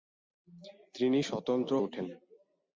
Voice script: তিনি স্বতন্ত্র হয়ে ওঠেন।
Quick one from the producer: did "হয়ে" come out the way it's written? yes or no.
no